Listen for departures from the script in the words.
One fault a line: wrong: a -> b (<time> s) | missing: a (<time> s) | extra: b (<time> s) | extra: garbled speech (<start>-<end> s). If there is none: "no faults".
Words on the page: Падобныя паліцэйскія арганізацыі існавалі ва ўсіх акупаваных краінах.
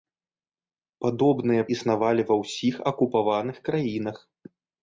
missing: паліцэйскія арганізацыі (1.6 s)